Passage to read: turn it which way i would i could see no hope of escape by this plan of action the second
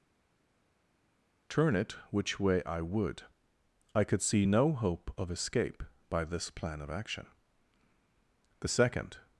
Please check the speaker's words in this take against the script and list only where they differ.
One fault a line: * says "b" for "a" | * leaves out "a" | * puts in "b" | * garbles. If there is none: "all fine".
all fine